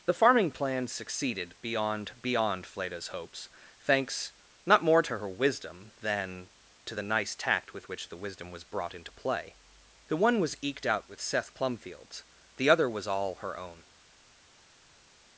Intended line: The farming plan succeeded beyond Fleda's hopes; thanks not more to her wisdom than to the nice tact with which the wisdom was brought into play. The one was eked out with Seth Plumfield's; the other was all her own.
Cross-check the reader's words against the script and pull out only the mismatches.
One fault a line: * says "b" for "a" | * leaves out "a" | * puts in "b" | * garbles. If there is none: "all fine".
* puts in "beyond"